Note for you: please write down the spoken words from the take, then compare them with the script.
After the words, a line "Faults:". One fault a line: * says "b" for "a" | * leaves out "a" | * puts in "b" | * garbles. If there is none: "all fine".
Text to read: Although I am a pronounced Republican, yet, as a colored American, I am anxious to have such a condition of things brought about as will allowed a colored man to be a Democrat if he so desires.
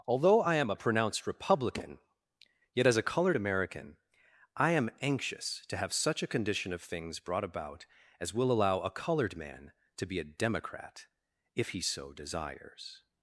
Although I am a pronounced Republican, yet, as a colored American, I am anxious to have such a condition of things brought about as will allow a colored man to be a Democrat if he so desires.
Faults:
* says "allow" for "allowed"